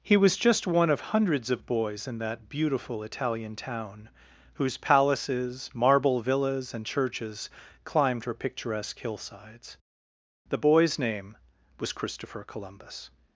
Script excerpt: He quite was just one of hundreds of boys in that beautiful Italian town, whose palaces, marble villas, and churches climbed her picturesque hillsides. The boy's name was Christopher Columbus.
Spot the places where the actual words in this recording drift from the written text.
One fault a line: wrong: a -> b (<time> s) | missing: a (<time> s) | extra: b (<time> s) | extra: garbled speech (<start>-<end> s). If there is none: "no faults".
missing: quite (0.2 s)